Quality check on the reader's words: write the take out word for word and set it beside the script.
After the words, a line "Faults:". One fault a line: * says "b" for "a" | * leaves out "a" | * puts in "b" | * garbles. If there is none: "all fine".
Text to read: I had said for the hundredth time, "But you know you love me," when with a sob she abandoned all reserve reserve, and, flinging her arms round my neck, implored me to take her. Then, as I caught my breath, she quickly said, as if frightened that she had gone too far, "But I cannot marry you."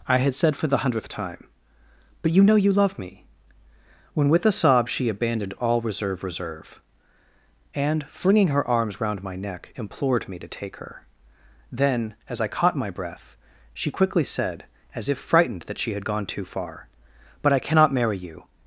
I had said for the hundredth time, "But you know you love me," when with a sob she abandoned all reserve reserve, and, flinging her arms round my neck, implored me to take her. Then, as I caught my breath, she quickly said, as if frightened that she had gone too far, "But I cannot marry you."
Faults:
all fine